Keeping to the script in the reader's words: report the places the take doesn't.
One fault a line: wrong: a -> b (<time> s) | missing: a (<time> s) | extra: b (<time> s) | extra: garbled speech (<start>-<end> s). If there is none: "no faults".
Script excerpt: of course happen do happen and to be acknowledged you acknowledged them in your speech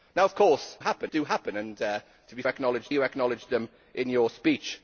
no faults